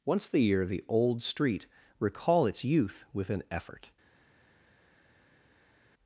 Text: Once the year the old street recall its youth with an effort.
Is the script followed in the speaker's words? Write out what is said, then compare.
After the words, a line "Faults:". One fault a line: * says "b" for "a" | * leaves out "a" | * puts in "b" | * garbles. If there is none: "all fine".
Once the year the old street recall its youth with an effort.
Faults:
all fine